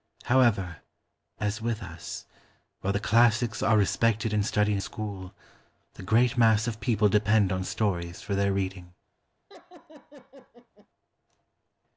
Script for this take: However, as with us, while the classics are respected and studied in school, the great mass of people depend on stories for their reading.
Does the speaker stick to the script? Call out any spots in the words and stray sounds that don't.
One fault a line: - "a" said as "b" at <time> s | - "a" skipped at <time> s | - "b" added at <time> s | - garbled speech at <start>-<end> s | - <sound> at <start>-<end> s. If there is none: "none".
- "in" skipped at 4.8 s
- laugh at 9.5-10.9 s